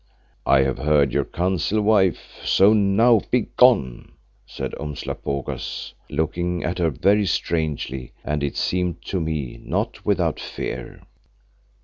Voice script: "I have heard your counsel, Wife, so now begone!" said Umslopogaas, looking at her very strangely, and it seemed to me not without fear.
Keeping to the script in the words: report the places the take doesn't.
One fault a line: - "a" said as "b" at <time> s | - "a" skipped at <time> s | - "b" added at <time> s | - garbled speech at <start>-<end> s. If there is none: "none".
none